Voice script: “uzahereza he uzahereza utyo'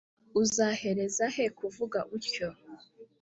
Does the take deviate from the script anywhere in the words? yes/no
yes